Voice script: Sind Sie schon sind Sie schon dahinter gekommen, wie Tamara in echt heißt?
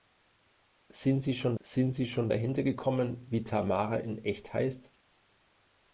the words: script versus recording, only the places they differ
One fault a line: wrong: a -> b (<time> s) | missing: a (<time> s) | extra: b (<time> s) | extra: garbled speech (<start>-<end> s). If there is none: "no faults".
no faults